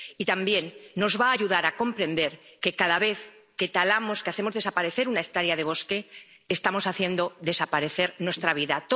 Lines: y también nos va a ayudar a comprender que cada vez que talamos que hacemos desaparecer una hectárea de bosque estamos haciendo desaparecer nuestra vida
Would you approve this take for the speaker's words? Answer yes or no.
yes